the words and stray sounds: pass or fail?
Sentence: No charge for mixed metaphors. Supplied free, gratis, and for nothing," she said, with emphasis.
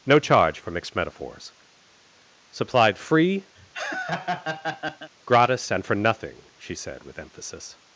fail